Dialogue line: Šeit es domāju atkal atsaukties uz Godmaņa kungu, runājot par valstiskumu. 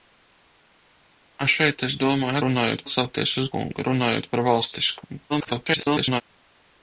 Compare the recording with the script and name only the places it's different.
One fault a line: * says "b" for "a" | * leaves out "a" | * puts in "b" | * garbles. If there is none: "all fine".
* says "runājot" for "atkal"
* leaves out "Godmaņa"
* garbles